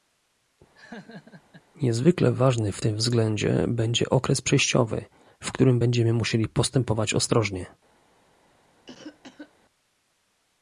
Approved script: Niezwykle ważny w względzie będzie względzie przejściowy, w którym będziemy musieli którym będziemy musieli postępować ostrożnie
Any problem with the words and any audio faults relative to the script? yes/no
yes